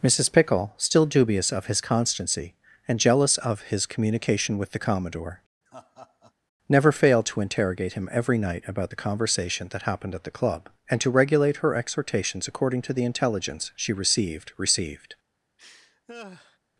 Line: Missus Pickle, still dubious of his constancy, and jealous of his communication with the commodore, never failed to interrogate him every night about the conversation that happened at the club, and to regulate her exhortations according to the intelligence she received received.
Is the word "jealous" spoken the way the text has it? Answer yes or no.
yes